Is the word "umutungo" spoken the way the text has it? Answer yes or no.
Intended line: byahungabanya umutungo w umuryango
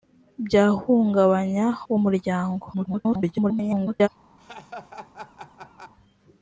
no